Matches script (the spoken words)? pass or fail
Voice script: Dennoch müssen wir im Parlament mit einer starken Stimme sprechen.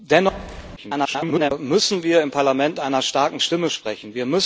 fail